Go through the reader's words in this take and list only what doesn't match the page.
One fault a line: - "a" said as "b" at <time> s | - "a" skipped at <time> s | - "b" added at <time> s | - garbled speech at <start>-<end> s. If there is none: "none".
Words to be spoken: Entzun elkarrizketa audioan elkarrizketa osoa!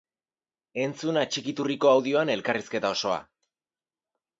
- "elkarrizketa" said as "atxikiturriko" at 1.2 s